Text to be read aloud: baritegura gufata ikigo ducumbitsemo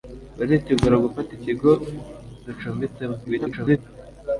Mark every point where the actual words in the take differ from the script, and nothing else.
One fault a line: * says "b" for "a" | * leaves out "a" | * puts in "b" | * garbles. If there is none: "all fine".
* garbles